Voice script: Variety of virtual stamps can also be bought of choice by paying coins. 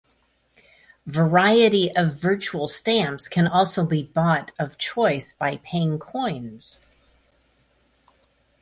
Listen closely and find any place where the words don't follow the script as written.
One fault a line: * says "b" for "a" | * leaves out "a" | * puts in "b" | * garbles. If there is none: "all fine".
all fine